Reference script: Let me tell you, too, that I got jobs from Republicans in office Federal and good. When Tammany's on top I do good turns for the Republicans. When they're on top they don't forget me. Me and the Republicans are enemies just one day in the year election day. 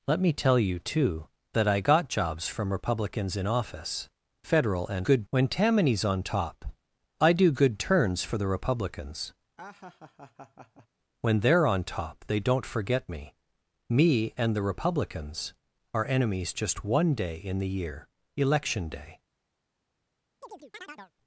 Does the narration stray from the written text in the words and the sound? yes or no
yes